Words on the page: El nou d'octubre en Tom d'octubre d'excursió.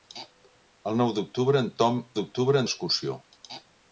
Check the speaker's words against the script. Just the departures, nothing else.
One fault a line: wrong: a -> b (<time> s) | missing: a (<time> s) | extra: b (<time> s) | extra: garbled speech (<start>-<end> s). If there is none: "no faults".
no faults